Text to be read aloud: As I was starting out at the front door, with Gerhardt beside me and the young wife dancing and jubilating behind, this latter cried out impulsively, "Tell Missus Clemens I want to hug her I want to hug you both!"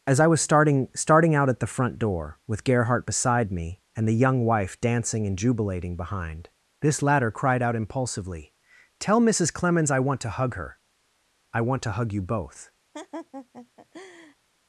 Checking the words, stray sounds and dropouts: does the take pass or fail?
fail